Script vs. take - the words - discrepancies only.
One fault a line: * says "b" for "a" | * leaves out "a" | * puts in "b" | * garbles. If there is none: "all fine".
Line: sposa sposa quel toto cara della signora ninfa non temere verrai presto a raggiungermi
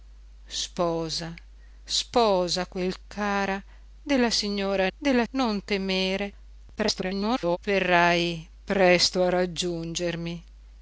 * leaves out "toto"
* says "della" for "ninfa"
* garbles